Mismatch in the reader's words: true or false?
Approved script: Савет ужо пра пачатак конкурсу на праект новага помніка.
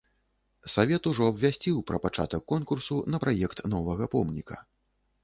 true